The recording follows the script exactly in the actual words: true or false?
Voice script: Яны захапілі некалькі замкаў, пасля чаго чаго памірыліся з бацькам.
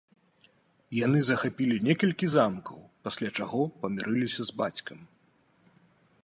false